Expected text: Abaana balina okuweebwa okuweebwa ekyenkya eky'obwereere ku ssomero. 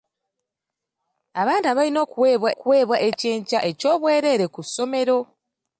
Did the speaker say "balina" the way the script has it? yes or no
yes